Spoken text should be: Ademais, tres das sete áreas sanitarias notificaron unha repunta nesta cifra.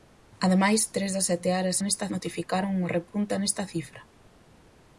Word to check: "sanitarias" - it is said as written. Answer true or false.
false